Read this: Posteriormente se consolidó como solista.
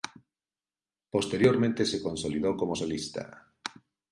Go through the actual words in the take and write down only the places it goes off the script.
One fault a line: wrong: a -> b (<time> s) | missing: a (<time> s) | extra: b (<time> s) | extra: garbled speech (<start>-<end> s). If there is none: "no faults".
no faults